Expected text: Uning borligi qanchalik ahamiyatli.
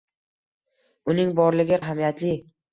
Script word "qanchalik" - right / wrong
wrong